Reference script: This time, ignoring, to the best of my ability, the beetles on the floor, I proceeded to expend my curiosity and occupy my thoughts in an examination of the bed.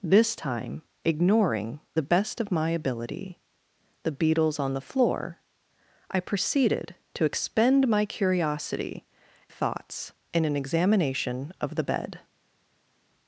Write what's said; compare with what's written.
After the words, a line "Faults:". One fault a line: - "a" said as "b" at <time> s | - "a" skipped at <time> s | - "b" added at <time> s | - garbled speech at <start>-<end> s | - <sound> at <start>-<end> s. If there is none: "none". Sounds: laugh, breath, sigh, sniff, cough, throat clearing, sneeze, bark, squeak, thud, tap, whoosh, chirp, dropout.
This time, ignoring, the best of my ability, the beetles on the floor, I proceeded to expend my curiosity thoughts in an examination of the bed.
Faults:
- "to" skipped at 1.8 s
- "and occupy my" skipped at 9.1 s